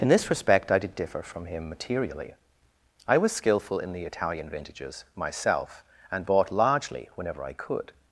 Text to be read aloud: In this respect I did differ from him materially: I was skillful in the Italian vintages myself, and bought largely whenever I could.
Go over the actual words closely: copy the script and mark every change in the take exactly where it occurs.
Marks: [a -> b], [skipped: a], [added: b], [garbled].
In this respect I did differ from him materially: I was skillful in the Italian vintages myself, and bought largely whenever I could.